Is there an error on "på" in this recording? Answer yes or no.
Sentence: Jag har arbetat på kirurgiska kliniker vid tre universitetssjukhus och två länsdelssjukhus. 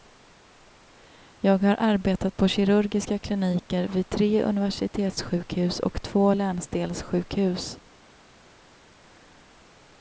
no